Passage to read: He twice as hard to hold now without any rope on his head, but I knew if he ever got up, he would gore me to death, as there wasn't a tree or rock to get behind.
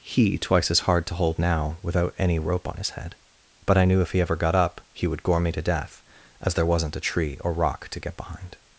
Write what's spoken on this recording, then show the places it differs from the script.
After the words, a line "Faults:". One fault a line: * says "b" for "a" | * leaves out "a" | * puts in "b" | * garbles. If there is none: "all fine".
He twice as hard to hold now without any rope on his head, but I knew if he ever got up, he would gore me to death, as there wasn't a tree or rock to get behind.
Faults:
all fine